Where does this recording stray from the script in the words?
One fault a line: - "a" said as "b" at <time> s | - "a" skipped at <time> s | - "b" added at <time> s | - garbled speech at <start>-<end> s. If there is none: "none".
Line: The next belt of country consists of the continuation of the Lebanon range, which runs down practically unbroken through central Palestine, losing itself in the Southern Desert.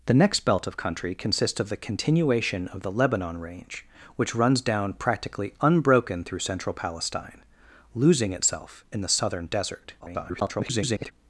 - garbled speech at 10.0-11.1 s